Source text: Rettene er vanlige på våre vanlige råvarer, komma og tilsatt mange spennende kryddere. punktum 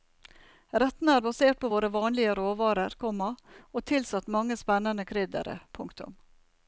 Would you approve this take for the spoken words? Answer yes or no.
no